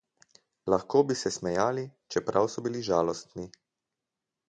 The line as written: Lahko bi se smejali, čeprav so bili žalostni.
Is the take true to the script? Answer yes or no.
yes